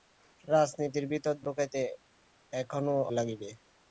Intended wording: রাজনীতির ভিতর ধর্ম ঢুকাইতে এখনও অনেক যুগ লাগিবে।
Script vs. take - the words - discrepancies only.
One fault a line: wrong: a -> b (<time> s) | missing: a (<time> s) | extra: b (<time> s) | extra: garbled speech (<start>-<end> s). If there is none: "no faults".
missing: ধর্ম (1.4 s)
missing: অনেক যুগ (3.0 s)